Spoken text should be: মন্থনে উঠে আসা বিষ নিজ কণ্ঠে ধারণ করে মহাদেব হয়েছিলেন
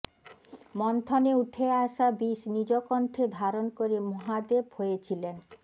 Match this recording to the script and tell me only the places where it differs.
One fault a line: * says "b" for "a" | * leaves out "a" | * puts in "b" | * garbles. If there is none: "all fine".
all fine